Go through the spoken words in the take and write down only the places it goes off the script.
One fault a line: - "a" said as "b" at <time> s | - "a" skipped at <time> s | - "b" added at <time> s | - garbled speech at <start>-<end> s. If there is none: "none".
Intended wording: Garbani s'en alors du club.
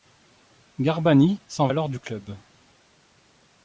none